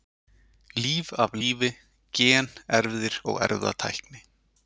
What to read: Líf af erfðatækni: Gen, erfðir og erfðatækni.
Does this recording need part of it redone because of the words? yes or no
yes